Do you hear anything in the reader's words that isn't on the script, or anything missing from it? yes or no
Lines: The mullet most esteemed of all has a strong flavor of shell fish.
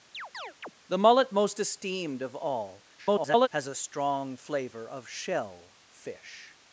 yes